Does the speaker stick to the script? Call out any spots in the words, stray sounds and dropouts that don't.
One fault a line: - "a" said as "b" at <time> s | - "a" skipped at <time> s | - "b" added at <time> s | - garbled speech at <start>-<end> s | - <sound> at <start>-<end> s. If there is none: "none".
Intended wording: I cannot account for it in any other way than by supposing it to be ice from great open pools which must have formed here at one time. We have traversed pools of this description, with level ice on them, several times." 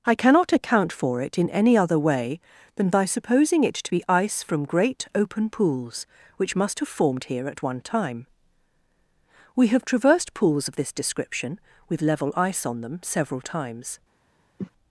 - cough at 14.6-14.7 s